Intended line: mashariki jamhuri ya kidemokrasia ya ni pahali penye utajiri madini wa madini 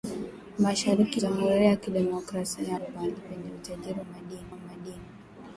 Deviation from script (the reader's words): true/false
false